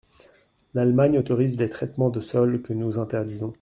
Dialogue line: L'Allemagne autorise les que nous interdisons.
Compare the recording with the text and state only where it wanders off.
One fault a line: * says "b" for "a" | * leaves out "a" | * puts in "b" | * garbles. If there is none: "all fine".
* puts in "traitements de sol"